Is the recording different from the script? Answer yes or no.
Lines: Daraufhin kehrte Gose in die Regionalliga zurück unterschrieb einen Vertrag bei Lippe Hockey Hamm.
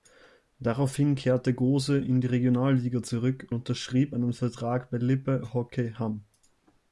no